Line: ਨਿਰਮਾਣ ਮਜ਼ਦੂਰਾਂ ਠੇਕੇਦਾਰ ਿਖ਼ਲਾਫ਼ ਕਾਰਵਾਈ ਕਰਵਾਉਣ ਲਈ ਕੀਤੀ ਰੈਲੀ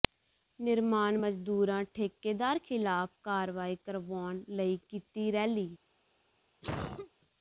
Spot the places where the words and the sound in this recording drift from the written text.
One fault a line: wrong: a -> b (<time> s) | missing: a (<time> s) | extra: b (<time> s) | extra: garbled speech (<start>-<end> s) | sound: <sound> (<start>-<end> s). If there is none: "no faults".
sound: cough (6.6-7.1 s)